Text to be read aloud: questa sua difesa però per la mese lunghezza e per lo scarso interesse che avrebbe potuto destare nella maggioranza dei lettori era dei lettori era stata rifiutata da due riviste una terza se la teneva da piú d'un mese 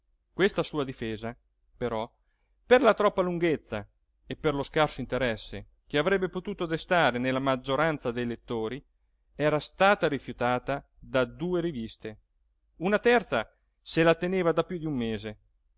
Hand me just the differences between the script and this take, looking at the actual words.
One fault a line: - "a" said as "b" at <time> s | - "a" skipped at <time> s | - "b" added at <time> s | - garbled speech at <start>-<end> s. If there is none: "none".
- "mese" said as "troppa" at 3.0 s
- "dei lettori era" skipped at 9.6 s